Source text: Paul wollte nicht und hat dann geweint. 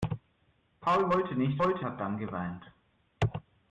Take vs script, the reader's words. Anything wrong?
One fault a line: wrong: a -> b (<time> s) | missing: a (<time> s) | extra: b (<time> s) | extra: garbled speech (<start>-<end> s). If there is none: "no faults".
wrong: und -> wollte (1.6 s)